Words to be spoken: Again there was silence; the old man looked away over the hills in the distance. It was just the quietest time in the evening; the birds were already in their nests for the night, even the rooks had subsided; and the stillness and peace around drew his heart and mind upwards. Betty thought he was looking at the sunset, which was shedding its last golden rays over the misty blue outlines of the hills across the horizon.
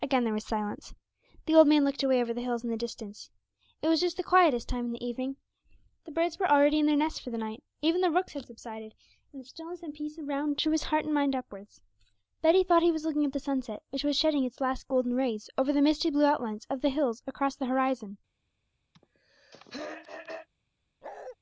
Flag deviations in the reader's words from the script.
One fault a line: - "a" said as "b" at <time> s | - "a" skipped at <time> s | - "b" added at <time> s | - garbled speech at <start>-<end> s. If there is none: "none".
none